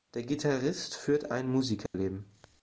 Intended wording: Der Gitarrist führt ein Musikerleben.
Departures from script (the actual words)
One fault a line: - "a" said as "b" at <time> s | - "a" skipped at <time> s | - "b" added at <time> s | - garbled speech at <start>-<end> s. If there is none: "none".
none